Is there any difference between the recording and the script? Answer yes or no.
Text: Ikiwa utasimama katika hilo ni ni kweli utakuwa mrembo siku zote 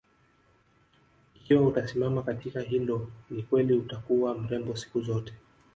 yes